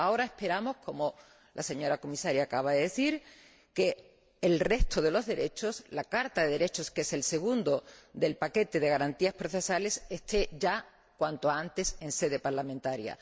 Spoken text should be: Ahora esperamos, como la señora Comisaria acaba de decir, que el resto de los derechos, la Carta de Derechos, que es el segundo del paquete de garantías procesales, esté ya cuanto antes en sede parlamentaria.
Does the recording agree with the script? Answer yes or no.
yes